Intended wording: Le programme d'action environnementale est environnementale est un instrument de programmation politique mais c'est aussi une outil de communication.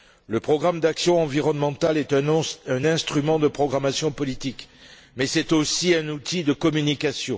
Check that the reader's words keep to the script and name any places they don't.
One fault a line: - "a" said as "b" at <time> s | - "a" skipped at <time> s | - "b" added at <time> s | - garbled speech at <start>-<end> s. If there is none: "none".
- "environnementale est" skipped at 2.1 s
- "une" said as "un" at 6.0 s